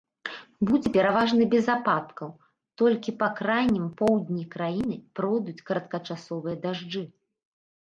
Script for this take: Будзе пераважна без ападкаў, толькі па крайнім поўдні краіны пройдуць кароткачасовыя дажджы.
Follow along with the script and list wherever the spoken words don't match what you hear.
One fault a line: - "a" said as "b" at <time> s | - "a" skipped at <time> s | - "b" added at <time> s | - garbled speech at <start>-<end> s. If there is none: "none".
none